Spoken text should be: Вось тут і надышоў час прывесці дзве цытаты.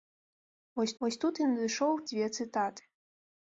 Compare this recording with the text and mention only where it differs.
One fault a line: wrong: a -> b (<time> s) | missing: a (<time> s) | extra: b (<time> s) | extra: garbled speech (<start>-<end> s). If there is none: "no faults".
extra: вось (1.0 s)
missing: час прывесці (1.9 s)